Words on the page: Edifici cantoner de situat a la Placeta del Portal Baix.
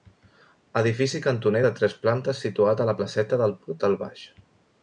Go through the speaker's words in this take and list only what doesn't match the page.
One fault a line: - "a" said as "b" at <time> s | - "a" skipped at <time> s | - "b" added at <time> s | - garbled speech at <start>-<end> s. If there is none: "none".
- "tres plantes" added at 1.8 s